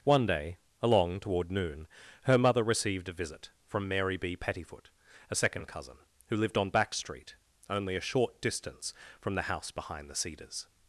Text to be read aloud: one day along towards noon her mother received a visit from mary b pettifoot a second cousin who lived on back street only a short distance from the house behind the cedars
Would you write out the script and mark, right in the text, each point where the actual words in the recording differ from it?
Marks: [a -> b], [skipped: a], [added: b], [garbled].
one day along [towards -> toward] noon her mother received a visit from mary b pettifoot a second cousin who lived on back street only a short distance from the house behind the cedars